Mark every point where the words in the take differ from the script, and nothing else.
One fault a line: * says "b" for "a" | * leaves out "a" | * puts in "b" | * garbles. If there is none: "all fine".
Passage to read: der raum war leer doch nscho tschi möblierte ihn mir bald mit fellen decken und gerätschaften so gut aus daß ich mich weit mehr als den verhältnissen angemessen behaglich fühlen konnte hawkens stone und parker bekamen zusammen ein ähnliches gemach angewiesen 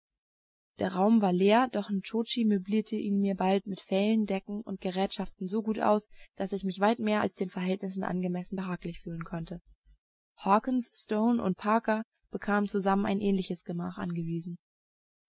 all fine